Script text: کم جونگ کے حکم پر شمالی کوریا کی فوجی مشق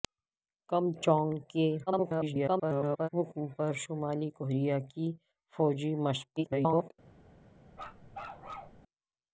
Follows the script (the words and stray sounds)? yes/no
no